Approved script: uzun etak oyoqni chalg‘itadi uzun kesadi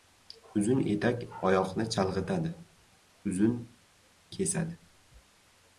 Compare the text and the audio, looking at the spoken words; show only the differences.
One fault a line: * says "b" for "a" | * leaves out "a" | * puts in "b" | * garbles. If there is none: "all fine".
all fine